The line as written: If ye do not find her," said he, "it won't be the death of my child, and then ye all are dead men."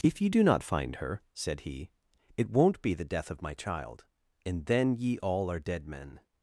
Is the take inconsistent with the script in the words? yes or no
no